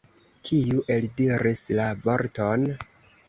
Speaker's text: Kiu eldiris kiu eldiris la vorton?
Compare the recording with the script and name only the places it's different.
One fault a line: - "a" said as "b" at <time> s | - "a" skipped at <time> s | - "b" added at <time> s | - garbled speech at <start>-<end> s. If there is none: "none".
- "kiu eldiris" skipped at 1.6 s